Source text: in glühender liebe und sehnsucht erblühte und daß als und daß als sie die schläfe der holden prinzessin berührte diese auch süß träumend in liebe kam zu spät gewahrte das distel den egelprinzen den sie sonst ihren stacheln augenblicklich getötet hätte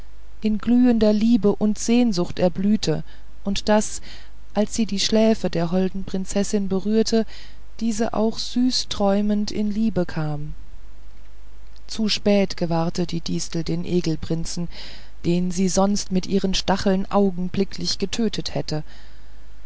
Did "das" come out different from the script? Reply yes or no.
yes